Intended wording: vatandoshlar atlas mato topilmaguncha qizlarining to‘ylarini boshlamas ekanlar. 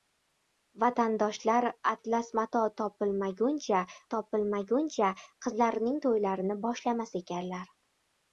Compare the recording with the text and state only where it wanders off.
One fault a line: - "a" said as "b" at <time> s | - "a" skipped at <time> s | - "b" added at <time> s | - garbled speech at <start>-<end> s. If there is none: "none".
- "topilmaguncha" added at 4.2 s